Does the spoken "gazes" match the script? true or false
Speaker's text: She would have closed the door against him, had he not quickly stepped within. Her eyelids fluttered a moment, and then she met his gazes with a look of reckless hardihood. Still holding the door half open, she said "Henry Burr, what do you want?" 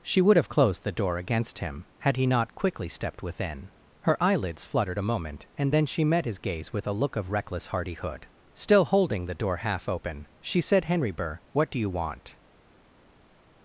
false